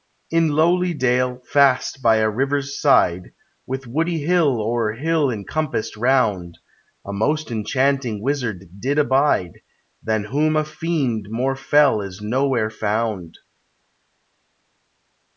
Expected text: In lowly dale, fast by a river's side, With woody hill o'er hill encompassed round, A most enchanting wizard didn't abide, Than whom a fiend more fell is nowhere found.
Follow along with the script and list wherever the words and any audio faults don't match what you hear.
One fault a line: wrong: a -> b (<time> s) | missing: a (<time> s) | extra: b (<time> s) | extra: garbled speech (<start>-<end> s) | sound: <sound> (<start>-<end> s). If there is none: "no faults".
wrong: didn't -> did (8.8 s)